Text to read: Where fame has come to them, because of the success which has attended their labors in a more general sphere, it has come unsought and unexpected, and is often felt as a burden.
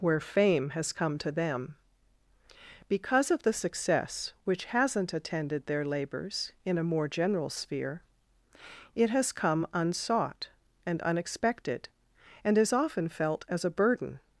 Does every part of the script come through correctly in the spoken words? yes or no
no